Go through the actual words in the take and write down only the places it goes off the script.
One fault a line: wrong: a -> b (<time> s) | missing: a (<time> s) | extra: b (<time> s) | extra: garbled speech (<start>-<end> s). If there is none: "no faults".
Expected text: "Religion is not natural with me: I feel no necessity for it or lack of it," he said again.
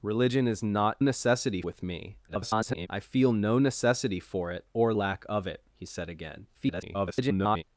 wrong: natural -> necessity (1.0 s)
extra: garbled speech (2.3-2.9 s)
extra: garbled speech (6.5-7.6 s)